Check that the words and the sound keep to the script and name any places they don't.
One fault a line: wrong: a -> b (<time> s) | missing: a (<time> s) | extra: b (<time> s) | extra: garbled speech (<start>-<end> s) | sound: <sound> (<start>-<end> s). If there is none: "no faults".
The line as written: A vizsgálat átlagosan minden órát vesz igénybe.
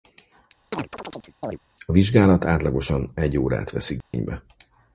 sound: chirp (0.7-1.6 s)
wrong: minden -> egy (3.1 s)
sound: dropout (4.0-4.1 s)